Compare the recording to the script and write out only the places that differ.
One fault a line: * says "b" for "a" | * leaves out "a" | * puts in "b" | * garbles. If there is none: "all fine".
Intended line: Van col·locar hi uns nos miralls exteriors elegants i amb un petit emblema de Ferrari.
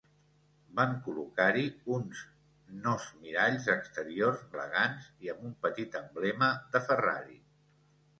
all fine